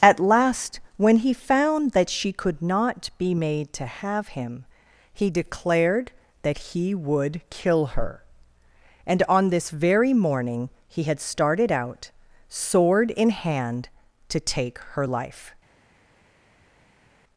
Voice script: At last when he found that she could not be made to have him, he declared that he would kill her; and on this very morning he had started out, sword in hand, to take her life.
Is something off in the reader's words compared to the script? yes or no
no